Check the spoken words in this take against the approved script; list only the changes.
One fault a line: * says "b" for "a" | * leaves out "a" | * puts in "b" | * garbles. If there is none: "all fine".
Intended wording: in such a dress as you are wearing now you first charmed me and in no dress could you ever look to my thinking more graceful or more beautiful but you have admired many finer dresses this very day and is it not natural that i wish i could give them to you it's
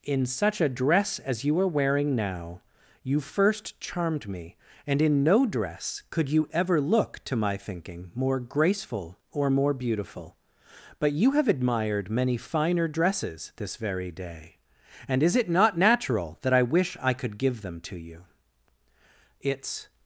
all fine